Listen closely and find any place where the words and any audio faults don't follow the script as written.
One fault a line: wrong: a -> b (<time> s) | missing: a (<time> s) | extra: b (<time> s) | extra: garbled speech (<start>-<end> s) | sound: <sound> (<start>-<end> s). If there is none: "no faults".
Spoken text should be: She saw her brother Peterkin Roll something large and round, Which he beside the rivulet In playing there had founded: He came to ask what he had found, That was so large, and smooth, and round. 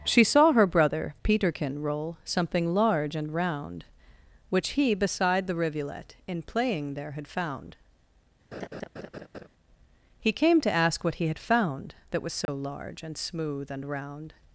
wrong: founded -> found (7.3 s)
sound: laugh (8.5-9.5 s)
sound: dropout (12.5-12.5 s)